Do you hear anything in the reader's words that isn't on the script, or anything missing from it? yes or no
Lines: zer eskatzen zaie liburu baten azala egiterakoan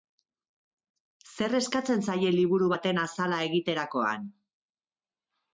no